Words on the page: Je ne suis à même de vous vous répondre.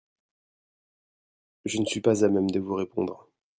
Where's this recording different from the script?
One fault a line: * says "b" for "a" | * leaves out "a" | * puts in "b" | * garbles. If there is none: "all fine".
* puts in "pas"
* leaves out "vous"